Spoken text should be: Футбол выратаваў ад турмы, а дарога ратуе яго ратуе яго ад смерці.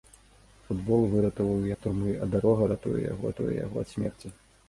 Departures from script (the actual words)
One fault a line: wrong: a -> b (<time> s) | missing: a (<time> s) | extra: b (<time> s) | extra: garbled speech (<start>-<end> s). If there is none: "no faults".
no faults